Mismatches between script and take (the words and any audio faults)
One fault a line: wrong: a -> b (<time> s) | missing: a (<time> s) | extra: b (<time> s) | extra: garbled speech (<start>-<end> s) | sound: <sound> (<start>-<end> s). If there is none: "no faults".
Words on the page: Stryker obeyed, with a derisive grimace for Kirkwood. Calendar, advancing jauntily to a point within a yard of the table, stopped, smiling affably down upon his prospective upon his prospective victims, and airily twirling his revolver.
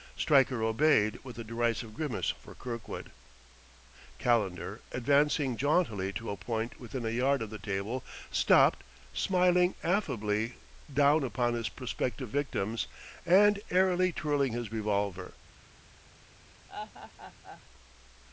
missing: upon his prospective (12.3 s)
sound: laugh (16.7-17.6 s)